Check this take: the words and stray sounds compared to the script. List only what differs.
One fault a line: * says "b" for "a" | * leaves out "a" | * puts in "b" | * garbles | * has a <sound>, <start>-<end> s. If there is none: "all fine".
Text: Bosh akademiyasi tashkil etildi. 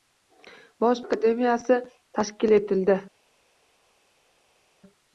all fine